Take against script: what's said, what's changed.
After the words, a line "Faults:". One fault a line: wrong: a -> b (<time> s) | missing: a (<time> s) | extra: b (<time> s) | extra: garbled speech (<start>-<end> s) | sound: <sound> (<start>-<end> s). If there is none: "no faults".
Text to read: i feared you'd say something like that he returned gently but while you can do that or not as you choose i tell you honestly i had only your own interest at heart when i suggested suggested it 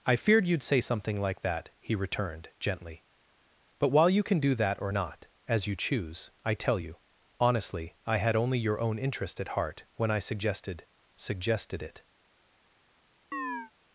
i feared you'd say something like that he returned gently but while you can do that or not as you choose i tell you honestly i had only your own interest at heart when i suggested suggested it
Faults:
sound: chirp (13.3-13.7 s)